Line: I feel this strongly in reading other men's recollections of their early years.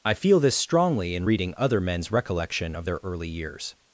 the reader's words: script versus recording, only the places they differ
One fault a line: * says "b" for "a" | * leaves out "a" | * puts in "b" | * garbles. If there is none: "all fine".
* says "recollection" for "recollections"